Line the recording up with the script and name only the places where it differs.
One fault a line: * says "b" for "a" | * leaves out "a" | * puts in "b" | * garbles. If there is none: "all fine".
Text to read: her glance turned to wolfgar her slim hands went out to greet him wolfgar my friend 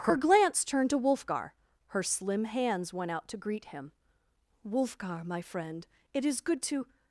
* puts in "it is good to"